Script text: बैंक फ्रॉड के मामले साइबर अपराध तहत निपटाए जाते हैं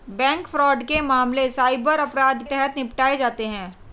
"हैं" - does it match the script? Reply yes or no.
yes